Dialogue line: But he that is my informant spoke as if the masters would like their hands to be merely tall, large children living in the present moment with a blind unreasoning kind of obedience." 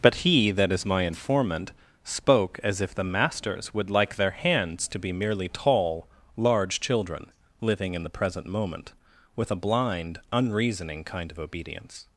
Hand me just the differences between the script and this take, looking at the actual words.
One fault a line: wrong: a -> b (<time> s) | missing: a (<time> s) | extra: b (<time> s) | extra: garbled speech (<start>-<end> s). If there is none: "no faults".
no faults